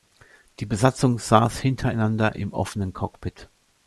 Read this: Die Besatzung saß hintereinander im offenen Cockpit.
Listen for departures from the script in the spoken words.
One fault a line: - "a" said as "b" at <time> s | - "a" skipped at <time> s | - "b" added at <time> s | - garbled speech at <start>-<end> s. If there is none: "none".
none